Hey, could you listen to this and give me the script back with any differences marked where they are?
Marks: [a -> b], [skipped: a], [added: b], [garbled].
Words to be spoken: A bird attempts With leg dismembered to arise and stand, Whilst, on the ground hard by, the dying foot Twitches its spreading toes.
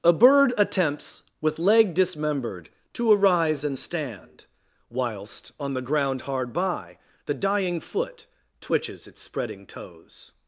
A bird attempts With leg dismembered to arise and stand, Whilst, on the ground hard by, the dying foot Twitches its spreading toes.